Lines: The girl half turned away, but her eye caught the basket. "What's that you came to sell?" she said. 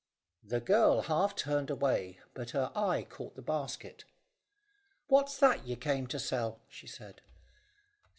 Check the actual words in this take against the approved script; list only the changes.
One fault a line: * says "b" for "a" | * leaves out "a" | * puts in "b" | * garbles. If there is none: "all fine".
all fine